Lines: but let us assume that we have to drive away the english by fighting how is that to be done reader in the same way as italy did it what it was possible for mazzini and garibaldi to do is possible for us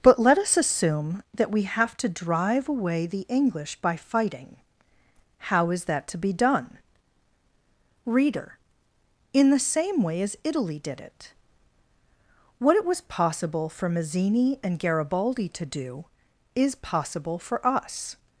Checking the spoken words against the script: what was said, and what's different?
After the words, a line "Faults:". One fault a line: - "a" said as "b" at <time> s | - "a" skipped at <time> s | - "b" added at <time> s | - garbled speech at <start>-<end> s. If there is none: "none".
but let us assume that we have to drive away the english by fighting how is that to be done reader in the same way as italy did it what it was possible for mazzini and garibaldi to do is possible for us
Faults:
none